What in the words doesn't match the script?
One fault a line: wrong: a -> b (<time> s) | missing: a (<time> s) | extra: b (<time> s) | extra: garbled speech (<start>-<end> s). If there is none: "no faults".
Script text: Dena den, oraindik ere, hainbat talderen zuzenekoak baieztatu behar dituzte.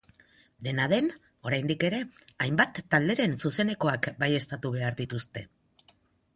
no faults